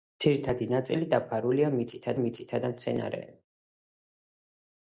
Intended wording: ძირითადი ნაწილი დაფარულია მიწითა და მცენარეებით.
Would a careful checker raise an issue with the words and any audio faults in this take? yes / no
yes